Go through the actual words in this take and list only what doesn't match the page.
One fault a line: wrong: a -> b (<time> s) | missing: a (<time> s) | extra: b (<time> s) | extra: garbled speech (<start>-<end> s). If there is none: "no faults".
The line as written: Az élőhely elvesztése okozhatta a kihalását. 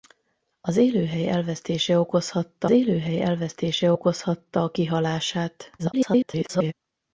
extra: élőhely elvesztése okozhatta (2.7 s)
extra: garbled speech (5.8-6.7 s)